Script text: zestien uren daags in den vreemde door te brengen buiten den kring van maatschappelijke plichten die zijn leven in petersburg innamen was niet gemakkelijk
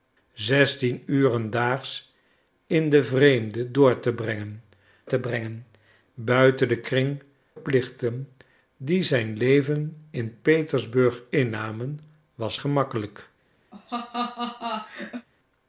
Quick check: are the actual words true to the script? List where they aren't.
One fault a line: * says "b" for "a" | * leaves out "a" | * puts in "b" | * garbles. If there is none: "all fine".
* puts in "te brengen"
* leaves out "van maatschappelijke"
* leaves out "niet"